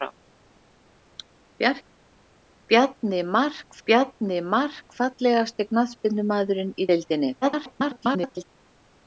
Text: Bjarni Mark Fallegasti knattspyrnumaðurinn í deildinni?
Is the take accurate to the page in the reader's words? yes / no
no